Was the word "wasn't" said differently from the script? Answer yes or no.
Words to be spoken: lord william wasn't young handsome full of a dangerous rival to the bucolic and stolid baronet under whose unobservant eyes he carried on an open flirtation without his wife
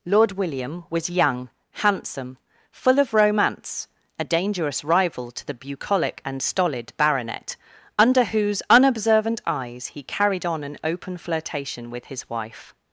yes